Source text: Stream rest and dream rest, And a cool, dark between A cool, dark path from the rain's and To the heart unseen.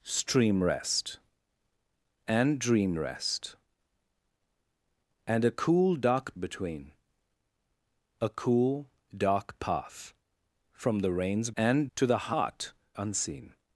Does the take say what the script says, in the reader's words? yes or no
yes